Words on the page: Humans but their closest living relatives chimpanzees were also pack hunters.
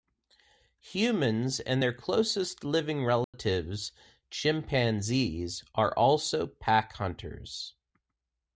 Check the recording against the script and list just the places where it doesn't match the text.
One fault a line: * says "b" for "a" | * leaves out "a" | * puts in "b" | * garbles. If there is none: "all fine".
* says "and" for "but"
* says "are" for "were"